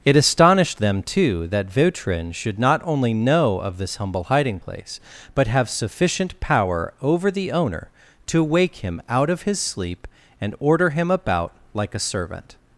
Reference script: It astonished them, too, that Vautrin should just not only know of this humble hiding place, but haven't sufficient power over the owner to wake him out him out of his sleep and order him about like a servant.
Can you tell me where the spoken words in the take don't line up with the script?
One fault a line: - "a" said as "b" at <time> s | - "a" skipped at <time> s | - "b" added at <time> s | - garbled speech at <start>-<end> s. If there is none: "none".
- "just" skipped at 2.6 s
- "haven't" said as "have" at 5.5 s
- "him out" skipped at 9.3 s